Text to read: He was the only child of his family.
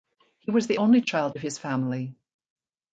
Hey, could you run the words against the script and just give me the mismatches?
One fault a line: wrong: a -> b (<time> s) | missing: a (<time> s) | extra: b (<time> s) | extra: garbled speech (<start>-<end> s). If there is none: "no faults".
no faults